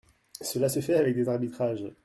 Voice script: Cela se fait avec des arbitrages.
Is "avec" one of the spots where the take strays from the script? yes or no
no